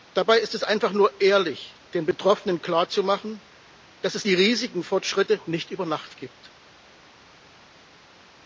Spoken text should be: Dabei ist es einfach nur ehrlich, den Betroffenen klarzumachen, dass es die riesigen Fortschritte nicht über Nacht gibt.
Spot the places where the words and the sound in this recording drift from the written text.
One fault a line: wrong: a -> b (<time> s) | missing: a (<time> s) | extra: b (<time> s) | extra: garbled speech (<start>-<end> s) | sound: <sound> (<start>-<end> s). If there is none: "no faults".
no faults